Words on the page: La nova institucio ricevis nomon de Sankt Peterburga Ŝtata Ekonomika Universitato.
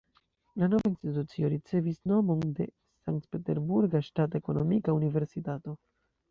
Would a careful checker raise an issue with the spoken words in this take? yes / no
no